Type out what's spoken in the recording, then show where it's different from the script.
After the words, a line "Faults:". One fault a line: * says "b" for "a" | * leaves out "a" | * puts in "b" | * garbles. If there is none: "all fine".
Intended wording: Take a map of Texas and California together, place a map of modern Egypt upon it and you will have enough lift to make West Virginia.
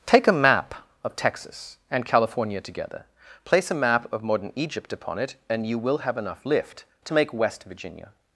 Take a map of Texas and California together, place a map of modern Egypt upon it and you will have enough lift to make West Virginia.
Faults:
all fine